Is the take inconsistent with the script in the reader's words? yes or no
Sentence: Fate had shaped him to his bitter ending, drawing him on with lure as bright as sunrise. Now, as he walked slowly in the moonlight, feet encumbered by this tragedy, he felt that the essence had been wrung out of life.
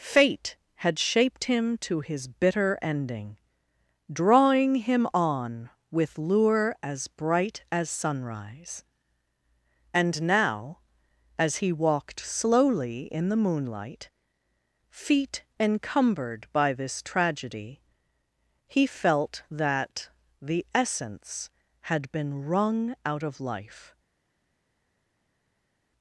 yes